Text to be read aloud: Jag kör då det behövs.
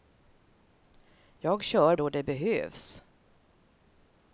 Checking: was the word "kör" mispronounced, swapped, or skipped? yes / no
no